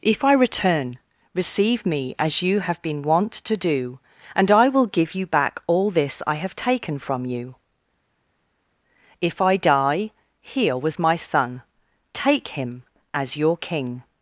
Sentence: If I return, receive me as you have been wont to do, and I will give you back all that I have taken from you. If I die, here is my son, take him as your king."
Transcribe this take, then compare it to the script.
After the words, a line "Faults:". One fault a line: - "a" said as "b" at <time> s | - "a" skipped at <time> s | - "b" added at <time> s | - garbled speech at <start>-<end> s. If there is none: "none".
If I return, receive me as you have been wont to do, and I will give you back all this I have taken from you. If I die, here was my son, take him as your king."
Faults:
- "that" said as "this" at 5.9 s
- "is" said as "was" at 10.8 s